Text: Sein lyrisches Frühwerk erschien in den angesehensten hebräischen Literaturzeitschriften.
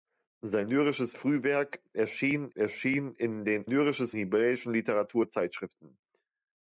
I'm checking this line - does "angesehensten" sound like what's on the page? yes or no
no